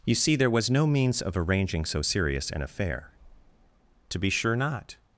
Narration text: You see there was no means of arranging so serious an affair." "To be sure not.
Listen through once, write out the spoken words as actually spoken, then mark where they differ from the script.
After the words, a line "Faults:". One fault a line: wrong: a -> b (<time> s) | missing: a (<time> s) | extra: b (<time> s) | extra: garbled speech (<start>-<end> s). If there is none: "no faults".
You see there was no means of arranging so serious an affair." "To be sure not.
Faults:
no faults